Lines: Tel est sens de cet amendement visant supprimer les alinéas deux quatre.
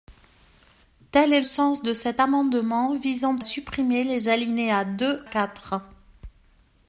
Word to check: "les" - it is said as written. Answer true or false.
true